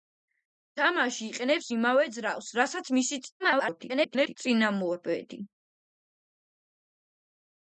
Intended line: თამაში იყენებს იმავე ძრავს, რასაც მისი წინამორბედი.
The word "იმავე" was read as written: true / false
true